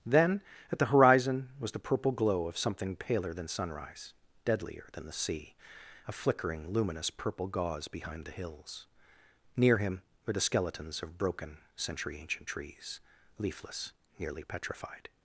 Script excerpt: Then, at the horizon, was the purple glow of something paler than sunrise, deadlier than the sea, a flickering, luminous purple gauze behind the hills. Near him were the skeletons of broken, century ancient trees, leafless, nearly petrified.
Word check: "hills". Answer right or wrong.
right